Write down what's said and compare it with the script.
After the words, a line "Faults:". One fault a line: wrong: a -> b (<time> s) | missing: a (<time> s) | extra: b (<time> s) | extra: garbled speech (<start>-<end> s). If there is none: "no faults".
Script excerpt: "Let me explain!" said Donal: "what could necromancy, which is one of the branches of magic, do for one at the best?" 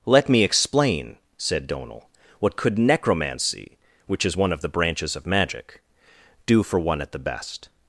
"Let me explain!" said Donal: "what could necromancy, which is one of the branches of magic, do for one at the best?"
Faults:
no faults